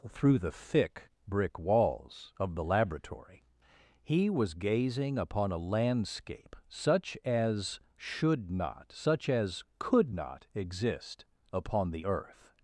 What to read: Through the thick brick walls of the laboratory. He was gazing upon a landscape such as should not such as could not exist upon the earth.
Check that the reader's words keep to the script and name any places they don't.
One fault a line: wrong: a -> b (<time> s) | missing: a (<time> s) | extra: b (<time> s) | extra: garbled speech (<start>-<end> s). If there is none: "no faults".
no faults